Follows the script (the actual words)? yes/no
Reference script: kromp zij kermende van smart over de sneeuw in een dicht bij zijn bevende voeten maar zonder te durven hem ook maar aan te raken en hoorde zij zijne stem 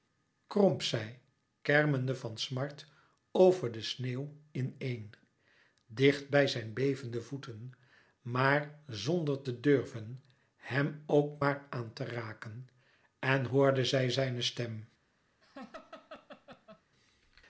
yes